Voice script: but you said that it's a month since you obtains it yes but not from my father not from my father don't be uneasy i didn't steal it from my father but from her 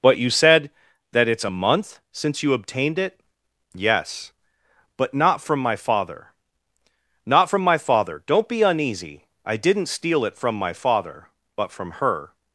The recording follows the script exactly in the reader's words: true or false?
false